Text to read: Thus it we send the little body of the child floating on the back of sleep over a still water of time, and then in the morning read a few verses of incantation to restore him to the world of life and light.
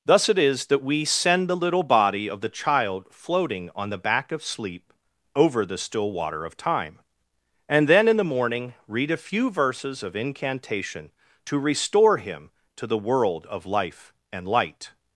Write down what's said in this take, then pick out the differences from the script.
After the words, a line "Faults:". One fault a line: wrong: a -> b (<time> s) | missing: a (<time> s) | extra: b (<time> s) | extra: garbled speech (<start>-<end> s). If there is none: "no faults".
Thus it is that we send the little body of the child floating on the back of sleep over the still water of time, and then in the morning read a few verses of incantation to restore him to the world of life and light.
Faults:
extra: is that (0.4 s)
wrong: a -> the (5.7 s)